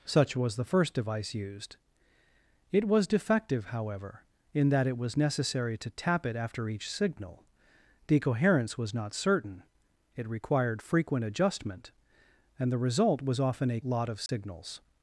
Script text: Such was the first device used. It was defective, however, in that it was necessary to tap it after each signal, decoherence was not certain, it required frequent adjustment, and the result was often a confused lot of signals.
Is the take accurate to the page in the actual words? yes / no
no